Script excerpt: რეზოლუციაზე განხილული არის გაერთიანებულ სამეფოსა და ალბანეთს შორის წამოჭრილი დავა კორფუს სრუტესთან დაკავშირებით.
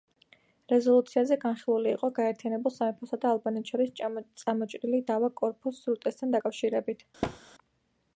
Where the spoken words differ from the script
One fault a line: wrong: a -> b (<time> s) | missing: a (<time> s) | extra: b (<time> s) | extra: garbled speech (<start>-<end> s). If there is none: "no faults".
wrong: არის -> იყო (2.0 s)